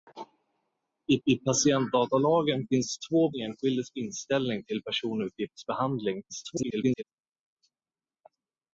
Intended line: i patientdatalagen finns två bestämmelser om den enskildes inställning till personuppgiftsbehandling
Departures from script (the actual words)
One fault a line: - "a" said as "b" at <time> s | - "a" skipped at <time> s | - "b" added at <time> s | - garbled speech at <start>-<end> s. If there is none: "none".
- "i" added at 1.3 s
- "bestämmelser om den" skipped at 3.3 s
- garbled speech at 6.3-7.0 s